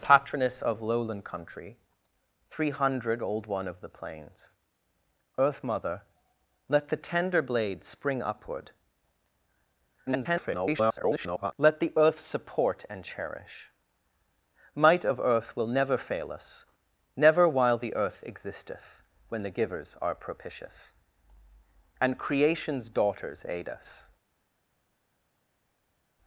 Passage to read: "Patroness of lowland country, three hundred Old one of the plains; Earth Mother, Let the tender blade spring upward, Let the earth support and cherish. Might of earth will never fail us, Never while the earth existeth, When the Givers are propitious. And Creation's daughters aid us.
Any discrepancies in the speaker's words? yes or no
yes